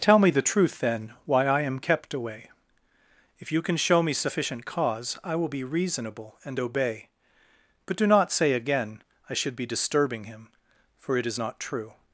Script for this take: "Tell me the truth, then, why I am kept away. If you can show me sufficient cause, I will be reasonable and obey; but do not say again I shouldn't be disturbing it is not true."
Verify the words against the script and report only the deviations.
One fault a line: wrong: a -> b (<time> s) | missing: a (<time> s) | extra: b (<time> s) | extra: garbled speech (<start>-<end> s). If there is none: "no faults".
wrong: shouldn't -> should (9.3 s)
extra: him for (10.2 s)